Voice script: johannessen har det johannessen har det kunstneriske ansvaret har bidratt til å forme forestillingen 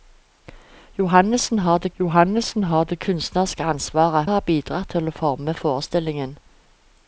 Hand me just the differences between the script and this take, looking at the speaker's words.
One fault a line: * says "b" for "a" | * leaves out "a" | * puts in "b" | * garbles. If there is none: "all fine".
all fine